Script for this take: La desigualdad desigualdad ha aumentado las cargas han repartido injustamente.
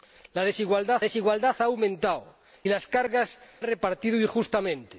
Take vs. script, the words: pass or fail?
pass